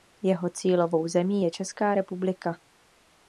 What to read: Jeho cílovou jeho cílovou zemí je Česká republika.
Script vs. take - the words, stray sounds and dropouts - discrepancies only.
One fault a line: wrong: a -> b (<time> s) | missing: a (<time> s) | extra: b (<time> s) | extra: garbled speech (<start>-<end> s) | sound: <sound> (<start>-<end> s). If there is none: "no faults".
missing: jeho cílovou (1.1 s)